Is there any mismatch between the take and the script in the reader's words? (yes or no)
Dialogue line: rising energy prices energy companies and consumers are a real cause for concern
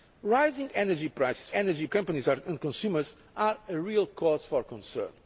no